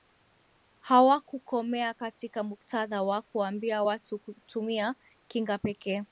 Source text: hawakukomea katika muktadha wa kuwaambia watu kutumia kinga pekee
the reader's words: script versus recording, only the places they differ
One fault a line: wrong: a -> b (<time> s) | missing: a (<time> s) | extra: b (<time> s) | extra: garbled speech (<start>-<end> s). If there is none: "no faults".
no faults